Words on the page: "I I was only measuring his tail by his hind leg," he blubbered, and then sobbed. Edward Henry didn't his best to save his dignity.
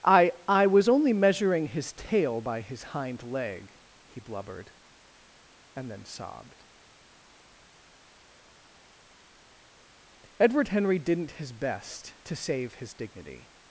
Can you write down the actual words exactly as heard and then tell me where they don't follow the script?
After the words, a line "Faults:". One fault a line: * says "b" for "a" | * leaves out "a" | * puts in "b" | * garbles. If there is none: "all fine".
"I I was only measuring his tail by his hind leg," he blubbered, and then sobbed. Edward Henry didn't his best to save his dignity.
Faults:
all fine